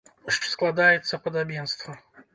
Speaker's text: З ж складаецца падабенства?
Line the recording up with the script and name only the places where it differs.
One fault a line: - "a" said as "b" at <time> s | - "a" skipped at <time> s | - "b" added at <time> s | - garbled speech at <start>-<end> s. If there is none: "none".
none